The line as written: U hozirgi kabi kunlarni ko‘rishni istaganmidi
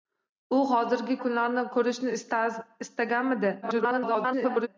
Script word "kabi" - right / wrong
wrong